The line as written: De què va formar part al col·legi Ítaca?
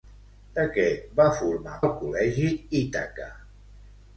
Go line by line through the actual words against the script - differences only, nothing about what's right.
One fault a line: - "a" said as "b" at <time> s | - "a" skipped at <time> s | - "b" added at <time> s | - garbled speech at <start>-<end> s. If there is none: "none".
- "part" skipped at 1.8 s